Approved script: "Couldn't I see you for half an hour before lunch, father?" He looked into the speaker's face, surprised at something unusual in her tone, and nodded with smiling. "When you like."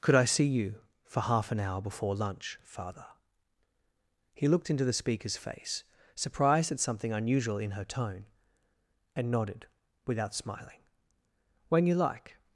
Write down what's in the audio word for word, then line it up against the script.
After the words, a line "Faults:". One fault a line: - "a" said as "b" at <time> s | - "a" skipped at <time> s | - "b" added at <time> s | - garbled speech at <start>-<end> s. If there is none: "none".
"Could I see you for half an hour before lunch, father?" He looked into the speaker's face, surprised at something unusual in her tone, and nodded without smiling. "When you like."
Faults:
- "Couldn't" said as "Could" at 0.0 s
- "with" said as "without" at 10.1 s